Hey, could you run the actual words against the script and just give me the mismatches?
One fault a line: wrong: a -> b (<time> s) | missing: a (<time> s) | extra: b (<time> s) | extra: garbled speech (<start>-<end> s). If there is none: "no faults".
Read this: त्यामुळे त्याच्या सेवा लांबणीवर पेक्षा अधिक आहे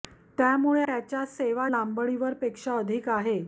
no faults